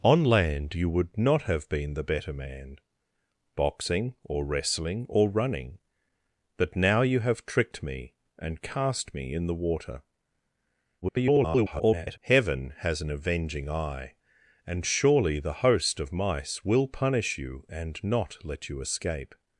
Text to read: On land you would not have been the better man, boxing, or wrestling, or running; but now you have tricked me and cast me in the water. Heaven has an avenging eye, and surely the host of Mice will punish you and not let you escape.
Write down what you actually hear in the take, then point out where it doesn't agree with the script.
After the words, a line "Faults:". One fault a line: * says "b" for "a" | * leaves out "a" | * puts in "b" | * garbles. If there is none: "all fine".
On land you would not have been the better man, boxing, or wrestling, or running; but now you have tricked me and cast me in the water. [garbled] Heaven has an avenging eye, and surely the host of Mice will punish you and not let you escape.
Faults:
* garbles